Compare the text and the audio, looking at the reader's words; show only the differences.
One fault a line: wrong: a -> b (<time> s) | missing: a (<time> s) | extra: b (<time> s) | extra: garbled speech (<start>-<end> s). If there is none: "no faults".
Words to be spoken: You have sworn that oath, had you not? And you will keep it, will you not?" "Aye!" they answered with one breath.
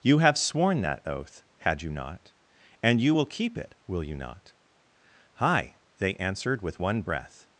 no faults